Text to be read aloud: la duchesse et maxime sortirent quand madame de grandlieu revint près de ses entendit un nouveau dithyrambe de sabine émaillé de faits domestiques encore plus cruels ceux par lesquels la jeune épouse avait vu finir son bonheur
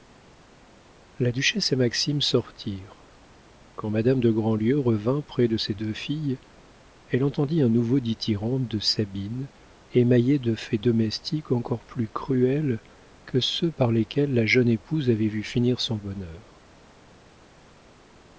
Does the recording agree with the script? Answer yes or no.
no